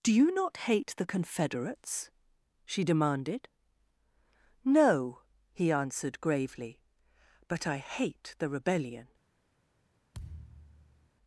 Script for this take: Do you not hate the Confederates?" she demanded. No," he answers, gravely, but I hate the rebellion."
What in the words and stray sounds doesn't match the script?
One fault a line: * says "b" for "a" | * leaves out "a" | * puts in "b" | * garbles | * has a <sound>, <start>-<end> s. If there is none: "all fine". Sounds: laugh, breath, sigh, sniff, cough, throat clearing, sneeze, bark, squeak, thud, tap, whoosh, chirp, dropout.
* says "answered" for "answers"
* has a thud, 10.1-11.1 s